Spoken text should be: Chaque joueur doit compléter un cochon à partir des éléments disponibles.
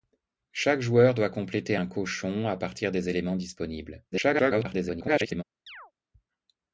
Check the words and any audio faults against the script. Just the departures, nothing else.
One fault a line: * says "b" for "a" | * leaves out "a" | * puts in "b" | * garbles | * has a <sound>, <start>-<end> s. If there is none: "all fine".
* garbles
* has a chirp, 5.7-5.9 s